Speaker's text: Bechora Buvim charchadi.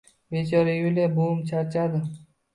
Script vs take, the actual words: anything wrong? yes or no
yes